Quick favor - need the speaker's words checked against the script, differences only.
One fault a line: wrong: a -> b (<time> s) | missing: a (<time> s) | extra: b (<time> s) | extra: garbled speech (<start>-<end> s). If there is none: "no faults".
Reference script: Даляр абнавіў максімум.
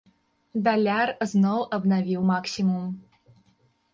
extra: зноў (1.3 s)